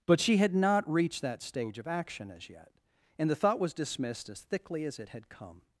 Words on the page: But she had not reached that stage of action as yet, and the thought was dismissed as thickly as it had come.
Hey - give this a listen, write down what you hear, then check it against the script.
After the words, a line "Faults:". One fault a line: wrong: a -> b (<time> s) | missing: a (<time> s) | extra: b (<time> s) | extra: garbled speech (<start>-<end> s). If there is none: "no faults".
But she had not reached that stage of action as yet, and the thought was dismissed as thickly as it had come.
Faults:
no faults